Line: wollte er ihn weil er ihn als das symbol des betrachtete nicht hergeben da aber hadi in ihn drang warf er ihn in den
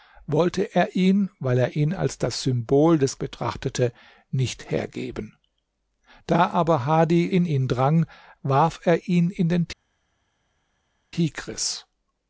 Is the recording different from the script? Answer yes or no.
no